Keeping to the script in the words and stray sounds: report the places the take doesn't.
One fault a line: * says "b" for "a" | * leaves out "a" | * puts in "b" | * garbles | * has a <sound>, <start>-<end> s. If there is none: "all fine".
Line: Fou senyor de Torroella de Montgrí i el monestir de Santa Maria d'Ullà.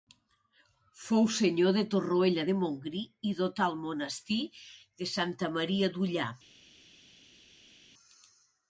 * puts in "dotà"